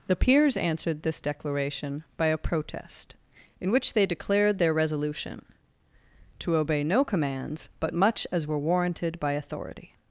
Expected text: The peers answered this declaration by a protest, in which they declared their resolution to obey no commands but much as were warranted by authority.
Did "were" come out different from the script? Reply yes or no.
no